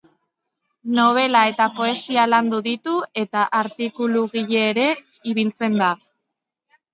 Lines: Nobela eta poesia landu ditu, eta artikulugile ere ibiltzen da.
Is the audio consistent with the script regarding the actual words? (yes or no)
yes